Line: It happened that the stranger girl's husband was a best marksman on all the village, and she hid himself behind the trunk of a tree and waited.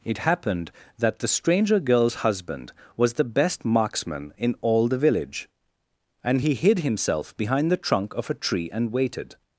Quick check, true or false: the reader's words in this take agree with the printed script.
false